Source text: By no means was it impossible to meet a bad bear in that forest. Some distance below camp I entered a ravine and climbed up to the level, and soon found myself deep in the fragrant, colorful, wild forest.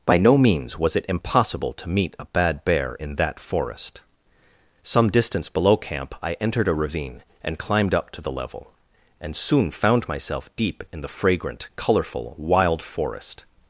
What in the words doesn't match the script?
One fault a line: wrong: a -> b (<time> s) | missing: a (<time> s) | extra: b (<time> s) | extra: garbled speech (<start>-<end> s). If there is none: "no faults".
no faults